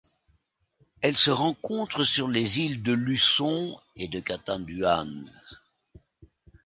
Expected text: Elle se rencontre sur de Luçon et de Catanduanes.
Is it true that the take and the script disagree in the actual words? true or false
true